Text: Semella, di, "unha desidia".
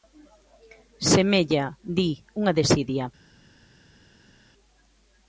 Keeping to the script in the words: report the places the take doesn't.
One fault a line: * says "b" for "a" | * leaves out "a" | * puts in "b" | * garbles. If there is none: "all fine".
all fine